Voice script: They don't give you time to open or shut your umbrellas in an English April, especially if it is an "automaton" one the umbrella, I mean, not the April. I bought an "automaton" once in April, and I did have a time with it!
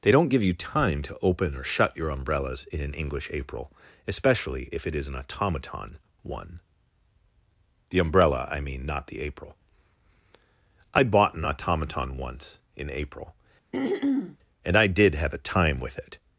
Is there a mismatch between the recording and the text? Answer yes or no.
no